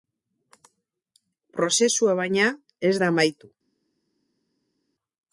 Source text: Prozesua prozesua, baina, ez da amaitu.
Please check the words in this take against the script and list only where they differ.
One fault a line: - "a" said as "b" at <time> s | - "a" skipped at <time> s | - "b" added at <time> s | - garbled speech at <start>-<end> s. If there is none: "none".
- "prozesua" skipped at 2.2 s